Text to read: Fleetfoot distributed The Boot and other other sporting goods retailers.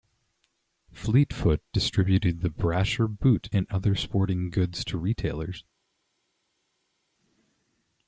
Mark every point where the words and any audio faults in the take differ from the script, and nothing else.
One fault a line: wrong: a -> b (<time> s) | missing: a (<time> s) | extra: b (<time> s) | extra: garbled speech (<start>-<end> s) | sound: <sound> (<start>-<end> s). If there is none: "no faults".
extra: Brasher (2.5 s)
missing: other (4.0 s)
extra: to (4.8 s)